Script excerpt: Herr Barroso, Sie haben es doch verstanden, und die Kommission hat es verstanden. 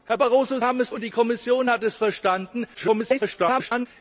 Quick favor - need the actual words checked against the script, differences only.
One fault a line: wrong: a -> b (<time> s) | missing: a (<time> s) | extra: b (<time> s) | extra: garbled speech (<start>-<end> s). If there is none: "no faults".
missing: Sie (0.6 s)
missing: doch verstanden (0.9 s)
extra: garbled speech (2.7-3.9 s)